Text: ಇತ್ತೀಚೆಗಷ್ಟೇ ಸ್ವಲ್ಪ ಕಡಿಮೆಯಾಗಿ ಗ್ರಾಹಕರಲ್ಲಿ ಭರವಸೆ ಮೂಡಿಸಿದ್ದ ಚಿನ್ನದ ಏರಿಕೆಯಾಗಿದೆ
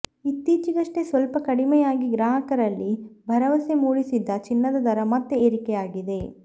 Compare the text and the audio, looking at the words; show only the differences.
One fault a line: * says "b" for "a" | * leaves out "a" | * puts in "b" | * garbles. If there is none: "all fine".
* puts in "ದರ ಮತ್ತೆ"